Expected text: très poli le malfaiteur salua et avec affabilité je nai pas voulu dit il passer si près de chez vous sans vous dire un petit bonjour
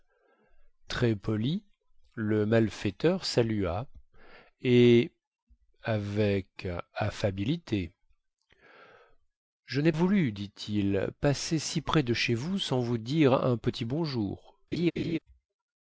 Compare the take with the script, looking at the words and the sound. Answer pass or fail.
fail